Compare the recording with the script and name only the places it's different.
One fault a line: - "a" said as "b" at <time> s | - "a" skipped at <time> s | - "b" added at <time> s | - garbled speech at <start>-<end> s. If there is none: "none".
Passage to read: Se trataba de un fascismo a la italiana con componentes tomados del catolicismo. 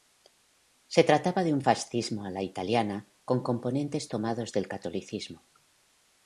none